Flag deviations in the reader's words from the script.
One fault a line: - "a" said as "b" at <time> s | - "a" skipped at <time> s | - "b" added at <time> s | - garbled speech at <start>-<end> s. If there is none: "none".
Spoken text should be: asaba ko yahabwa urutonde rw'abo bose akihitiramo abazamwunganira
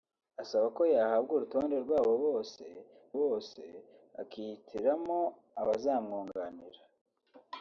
- "bose" added at 3.2 s